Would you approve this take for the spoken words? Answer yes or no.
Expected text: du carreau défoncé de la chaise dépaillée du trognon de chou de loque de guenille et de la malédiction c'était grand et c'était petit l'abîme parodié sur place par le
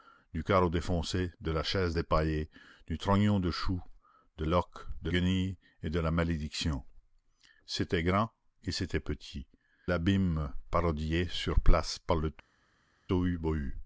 yes